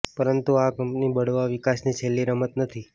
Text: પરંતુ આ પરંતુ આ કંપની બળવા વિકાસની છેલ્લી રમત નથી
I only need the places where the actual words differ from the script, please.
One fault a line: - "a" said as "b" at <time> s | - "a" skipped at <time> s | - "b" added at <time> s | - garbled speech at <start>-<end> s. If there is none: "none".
- "પરંતુ આ" skipped at 0.7 s